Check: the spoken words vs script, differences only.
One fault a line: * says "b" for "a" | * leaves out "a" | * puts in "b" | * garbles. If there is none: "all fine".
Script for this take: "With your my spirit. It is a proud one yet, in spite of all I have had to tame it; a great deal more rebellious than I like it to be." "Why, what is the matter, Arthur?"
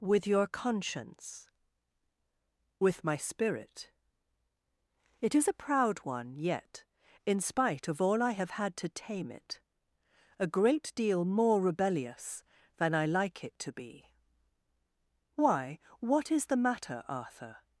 * puts in "conscience With"